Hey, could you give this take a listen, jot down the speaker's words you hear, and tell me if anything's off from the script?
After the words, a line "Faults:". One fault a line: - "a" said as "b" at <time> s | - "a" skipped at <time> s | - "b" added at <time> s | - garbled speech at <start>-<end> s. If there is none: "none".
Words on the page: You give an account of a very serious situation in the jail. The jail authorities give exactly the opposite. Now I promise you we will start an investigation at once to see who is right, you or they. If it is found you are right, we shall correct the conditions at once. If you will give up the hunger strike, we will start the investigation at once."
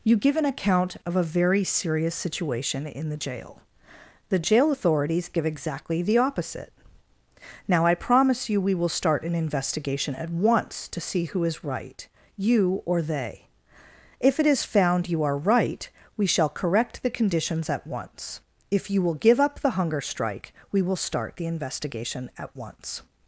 You give an account of a very serious situation in the jail. The jail authorities give exactly the opposite. Now I promise you we will start an investigation at once to see who is right, you or they. If it is found you are right, we shall correct the conditions at once. If you will give up the hunger strike, we will start the investigation at once."
Faults:
none